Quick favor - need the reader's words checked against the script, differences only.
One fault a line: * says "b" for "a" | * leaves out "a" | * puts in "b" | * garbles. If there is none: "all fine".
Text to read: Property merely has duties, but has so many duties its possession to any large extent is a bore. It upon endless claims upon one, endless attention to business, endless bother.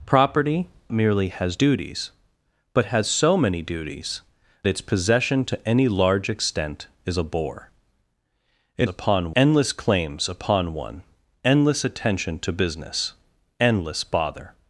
all fine